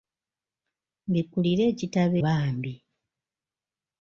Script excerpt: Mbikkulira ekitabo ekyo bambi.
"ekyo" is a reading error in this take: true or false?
true